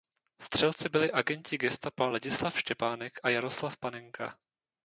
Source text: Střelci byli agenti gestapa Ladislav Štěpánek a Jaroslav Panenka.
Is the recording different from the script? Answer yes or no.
no